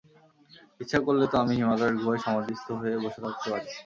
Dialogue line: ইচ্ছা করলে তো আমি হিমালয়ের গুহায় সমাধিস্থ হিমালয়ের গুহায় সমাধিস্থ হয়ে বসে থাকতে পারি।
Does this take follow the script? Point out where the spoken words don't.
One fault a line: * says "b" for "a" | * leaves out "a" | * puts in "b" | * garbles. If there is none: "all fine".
* leaves out "হিমালয়ের গুহায় সমাধিস্থ"